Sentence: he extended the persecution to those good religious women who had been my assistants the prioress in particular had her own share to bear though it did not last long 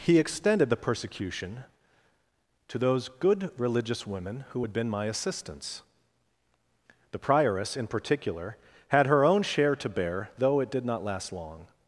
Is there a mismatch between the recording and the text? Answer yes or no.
no